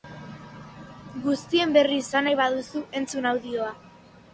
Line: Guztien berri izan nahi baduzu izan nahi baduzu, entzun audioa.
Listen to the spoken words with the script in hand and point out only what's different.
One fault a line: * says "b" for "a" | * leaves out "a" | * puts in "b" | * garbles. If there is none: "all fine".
* leaves out "izan nahi baduzu"